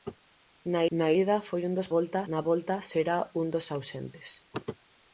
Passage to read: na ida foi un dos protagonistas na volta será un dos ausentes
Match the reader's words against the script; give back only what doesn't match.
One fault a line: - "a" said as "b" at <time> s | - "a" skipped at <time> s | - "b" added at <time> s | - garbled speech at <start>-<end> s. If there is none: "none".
- "na" added at 1.0 s
- "protagonistas" said as "volta" at 1.9 s